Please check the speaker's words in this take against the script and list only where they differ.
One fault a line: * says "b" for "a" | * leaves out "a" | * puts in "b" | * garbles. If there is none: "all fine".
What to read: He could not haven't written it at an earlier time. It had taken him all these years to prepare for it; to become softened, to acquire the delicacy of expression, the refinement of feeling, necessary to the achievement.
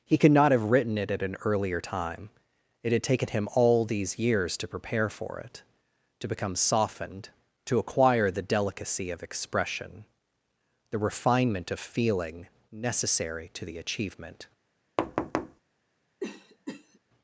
* says "have" for "haven't"